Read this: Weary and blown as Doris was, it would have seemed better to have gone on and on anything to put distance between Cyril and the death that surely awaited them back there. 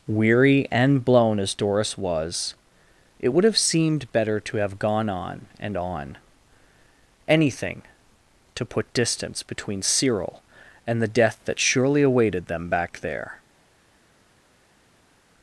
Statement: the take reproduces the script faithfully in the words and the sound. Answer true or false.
true